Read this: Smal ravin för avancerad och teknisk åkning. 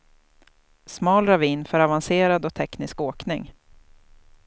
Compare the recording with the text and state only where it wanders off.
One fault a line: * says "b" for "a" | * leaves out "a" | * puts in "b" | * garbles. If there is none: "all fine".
all fine